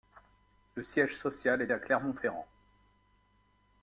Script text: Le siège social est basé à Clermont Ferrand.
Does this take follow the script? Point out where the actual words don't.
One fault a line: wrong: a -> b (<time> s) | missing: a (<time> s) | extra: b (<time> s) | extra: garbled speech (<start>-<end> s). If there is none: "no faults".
missing: basé (1.7 s)